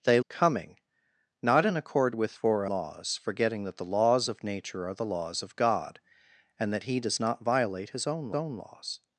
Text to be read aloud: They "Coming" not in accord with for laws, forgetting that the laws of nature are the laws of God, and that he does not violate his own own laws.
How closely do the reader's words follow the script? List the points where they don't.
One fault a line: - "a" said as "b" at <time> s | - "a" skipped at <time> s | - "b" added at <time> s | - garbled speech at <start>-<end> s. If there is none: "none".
none